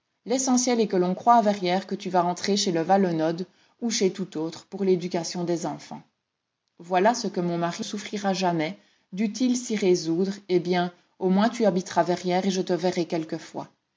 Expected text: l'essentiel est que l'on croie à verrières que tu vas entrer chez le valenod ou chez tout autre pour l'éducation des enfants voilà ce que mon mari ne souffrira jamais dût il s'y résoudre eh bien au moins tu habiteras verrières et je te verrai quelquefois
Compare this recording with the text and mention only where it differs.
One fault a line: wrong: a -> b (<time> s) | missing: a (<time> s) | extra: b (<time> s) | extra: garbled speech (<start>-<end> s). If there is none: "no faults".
missing: ne (7.8 s)